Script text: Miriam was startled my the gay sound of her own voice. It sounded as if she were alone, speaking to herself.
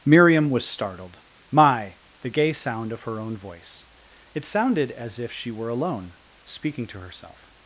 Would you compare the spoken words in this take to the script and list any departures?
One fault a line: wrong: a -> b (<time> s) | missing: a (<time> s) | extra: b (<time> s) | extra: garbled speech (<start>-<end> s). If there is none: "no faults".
no faults